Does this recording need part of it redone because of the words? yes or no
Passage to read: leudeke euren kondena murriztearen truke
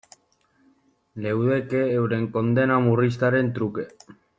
no